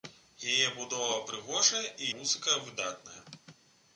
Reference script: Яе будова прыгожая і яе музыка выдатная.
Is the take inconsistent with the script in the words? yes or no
yes